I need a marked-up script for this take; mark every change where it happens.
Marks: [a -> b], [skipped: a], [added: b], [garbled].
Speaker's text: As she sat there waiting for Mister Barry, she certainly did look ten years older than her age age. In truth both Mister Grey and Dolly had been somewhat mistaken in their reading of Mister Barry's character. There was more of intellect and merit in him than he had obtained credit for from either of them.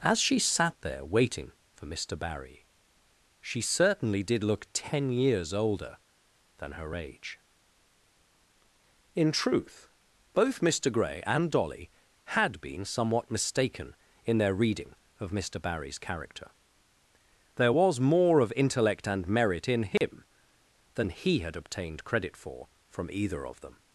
As she sat there waiting for Mister Barry, she certainly did look ten years older than her age [skipped: age.] In truth both Mister Grey and Dolly had been somewhat mistaken in their reading of Mister Barry's character. There was more of intellect and merit in him than he had obtained credit for from either of them.